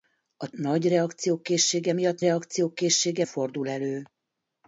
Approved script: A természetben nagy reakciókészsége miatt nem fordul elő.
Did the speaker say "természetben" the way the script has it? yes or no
no